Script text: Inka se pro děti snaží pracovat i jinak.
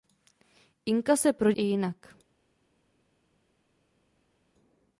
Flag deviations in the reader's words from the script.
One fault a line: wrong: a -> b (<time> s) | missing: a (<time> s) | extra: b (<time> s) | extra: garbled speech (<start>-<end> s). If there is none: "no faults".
missing: děti snaží pracovat (1.5 s)